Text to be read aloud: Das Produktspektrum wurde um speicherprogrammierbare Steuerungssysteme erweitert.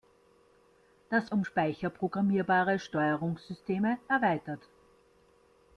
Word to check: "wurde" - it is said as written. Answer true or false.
false